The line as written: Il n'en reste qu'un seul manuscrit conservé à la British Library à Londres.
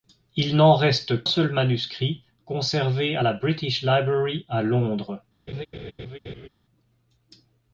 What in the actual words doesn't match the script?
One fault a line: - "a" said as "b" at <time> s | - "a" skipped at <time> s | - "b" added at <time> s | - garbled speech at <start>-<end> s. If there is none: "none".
- "qu'un" skipped at 1.2 s